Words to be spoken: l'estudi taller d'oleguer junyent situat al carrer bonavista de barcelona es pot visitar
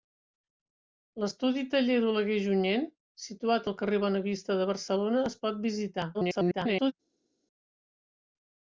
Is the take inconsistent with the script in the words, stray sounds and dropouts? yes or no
yes